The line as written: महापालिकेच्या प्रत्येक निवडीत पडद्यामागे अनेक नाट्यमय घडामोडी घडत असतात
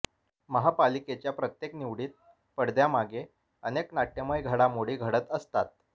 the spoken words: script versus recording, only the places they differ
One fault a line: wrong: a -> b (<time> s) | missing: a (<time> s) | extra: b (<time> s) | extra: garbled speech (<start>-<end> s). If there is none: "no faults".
no faults